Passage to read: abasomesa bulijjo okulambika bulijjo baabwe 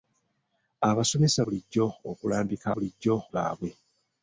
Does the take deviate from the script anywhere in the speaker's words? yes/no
no